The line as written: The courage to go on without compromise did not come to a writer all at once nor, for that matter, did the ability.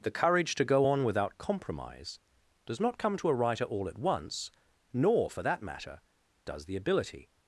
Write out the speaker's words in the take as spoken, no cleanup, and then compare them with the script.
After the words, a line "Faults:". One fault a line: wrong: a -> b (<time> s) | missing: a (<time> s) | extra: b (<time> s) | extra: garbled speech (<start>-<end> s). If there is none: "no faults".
The courage to go on without compromise does not come to a writer all at once nor, for that matter, does the ability.
Faults:
wrong: did -> does (2.6 s)
wrong: did -> does (6.4 s)